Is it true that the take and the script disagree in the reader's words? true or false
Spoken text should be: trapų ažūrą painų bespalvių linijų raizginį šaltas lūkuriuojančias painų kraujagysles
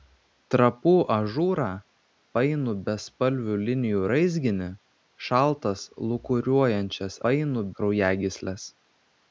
false